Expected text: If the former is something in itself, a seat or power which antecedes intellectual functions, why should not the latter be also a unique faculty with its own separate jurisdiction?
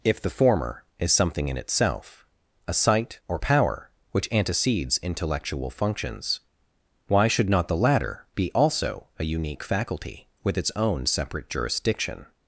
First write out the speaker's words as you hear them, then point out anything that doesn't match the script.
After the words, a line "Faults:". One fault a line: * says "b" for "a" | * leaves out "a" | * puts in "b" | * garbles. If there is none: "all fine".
If the former is something in itself, a sight or power which antecedes intellectual functions, why should not the latter be also a unique faculty with its own separate jurisdiction?
Faults:
* says "sight" for "seat"